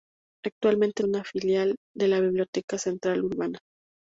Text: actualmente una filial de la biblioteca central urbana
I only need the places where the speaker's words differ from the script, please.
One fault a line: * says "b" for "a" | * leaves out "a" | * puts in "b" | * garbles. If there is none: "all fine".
all fine